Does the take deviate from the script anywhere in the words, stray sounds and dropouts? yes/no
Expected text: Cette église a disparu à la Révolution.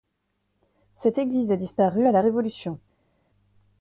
no